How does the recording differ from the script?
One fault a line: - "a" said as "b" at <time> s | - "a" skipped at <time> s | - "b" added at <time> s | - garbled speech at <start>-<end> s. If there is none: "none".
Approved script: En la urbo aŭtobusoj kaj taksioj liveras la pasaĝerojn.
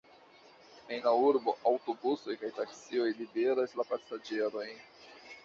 none